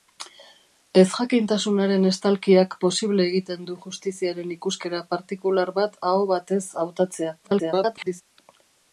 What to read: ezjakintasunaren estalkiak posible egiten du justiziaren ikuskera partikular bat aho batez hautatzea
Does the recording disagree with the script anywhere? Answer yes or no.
yes